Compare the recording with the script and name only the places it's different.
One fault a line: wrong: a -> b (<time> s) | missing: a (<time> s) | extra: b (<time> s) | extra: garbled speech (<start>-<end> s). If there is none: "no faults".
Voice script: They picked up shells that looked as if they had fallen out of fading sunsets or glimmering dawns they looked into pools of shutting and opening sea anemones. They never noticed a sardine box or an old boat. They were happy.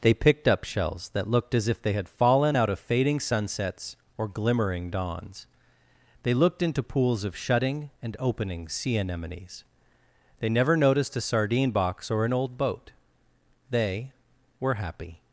no faults